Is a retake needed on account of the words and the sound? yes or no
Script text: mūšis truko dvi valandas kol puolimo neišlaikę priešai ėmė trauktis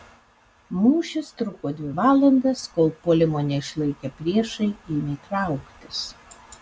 no